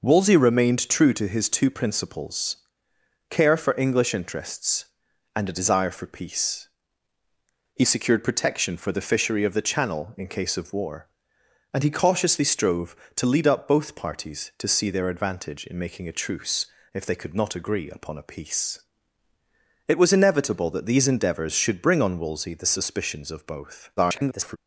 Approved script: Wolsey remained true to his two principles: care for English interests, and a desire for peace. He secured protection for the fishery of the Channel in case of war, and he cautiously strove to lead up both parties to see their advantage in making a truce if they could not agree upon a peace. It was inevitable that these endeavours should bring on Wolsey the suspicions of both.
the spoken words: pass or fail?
fail